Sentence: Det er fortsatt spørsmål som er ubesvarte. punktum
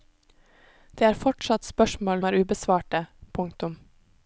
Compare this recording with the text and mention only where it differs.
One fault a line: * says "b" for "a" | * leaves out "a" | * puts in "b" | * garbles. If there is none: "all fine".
* leaves out "som"